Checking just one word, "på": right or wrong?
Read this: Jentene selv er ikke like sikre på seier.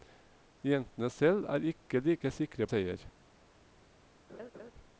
wrong